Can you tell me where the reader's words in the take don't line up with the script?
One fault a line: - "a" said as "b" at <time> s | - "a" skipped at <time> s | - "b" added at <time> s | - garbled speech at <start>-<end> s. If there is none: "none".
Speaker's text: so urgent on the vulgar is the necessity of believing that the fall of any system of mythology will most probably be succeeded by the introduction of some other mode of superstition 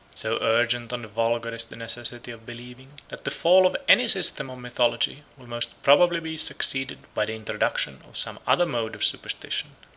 none